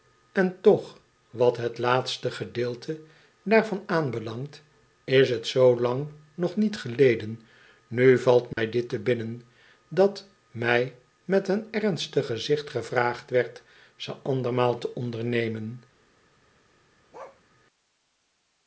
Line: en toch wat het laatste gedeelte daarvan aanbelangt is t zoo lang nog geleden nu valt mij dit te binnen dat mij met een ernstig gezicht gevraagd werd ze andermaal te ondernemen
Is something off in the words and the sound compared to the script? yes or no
yes